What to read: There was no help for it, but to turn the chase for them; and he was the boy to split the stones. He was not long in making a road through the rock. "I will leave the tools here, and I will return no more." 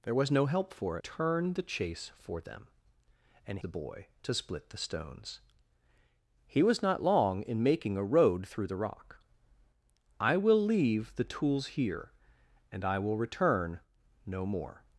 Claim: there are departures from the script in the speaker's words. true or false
true